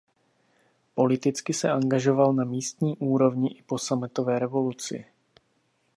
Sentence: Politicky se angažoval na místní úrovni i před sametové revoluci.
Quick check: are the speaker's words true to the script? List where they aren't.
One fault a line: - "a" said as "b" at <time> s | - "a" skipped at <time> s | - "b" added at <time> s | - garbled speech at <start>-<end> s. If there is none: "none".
- "před" said as "po" at 3.6 s